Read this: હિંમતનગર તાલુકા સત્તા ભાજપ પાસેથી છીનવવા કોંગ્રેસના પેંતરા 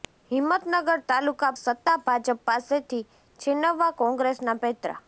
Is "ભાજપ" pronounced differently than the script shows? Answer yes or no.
no